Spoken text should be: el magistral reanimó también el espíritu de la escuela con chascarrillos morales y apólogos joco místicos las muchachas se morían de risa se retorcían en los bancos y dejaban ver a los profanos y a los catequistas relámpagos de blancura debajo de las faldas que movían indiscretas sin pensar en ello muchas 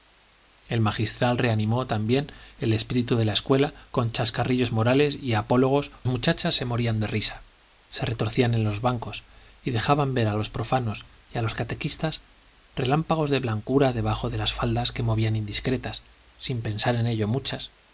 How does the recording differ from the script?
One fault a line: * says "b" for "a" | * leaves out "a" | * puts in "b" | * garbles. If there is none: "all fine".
* leaves out "joco místicos las"